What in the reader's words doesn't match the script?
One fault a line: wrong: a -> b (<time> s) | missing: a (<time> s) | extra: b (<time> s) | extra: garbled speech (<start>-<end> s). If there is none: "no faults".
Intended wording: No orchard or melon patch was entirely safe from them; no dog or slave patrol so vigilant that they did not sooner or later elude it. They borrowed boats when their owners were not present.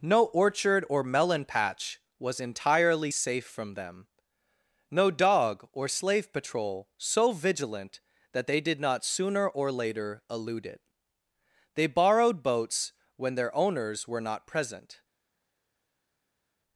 no faults